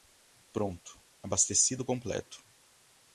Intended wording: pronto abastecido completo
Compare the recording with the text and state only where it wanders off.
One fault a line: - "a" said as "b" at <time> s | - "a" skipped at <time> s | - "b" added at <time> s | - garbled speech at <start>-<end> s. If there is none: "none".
none